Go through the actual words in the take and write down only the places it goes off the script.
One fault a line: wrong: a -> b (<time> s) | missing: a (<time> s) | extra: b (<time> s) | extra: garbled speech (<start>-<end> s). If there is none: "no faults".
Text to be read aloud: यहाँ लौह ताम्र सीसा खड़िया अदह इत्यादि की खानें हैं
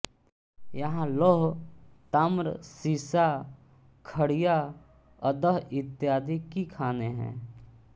no faults